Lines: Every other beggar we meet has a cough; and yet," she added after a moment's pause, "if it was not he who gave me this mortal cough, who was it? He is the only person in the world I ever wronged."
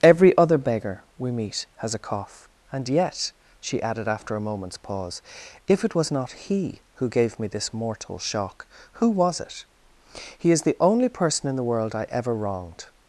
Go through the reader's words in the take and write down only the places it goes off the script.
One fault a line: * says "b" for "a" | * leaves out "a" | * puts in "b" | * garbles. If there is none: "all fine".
* says "shock" for "cough"